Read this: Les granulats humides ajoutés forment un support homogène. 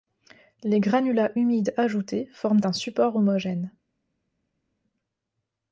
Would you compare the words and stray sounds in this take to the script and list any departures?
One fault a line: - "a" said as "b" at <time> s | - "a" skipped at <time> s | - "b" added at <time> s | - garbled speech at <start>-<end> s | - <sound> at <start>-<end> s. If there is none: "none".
none